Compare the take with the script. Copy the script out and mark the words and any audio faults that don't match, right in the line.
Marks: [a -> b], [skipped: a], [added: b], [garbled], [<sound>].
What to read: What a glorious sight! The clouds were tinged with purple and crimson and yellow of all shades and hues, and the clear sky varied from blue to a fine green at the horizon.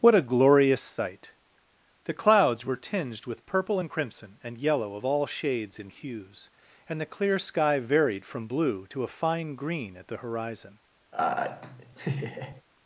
What a glorious sight! The clouds were tinged with purple and crimson and yellow of all shades and hues, and the clear sky varied from blue to a fine green at the horizon. [laugh]